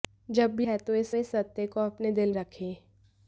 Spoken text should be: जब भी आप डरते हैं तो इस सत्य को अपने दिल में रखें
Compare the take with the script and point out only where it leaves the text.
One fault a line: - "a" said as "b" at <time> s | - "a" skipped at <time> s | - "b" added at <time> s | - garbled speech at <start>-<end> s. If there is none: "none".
- "आप डरते" skipped at 0.7 s
- "इस" added at 1.1 s
- "में" skipped at 2.3 s